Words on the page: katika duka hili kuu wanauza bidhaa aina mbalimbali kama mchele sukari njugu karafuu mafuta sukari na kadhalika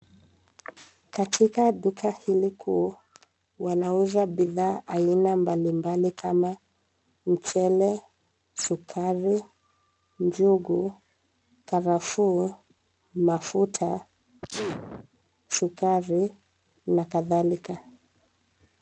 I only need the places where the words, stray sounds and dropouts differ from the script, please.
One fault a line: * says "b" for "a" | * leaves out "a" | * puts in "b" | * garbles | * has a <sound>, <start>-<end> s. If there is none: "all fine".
* has a sneeze, 14.4-15.1 s